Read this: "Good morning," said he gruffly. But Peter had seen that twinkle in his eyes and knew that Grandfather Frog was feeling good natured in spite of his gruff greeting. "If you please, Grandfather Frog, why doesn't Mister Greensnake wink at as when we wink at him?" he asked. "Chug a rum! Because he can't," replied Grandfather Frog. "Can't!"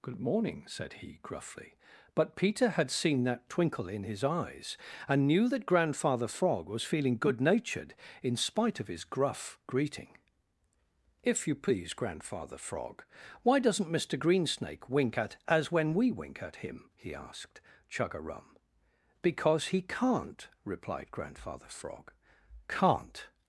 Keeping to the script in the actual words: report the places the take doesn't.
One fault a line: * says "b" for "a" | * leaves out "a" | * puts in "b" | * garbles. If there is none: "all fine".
all fine